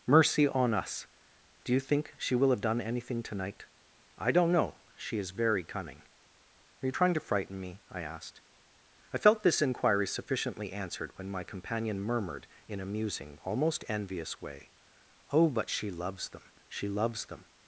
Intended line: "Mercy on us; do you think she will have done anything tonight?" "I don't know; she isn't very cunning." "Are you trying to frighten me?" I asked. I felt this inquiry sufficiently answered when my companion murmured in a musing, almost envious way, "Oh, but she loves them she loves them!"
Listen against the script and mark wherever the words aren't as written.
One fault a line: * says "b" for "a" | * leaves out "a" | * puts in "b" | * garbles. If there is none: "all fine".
* says "is" for "isn't"